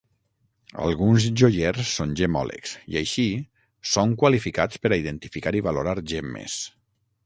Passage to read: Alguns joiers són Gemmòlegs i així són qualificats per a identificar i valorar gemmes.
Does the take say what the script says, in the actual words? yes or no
yes